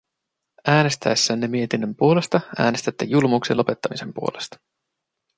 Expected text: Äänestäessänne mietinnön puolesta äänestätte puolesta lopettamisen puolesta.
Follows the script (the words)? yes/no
no